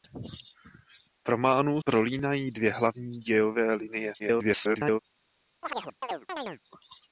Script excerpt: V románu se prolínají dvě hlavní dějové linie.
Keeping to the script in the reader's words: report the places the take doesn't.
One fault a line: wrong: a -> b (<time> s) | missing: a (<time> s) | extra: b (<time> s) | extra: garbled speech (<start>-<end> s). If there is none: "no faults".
missing: se (1.8 s)
extra: garbled speech (4.2-5.0 s)